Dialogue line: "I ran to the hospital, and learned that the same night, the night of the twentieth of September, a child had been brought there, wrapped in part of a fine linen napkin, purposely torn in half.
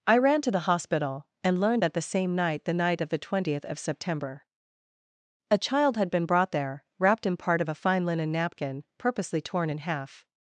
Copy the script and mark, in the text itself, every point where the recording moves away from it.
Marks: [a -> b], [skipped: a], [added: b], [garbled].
"I ran to the hospital, and learned that the same night, the night of the twentieth of September, a child had been brought there, wrapped in part of a fine linen napkin, purposely torn in half.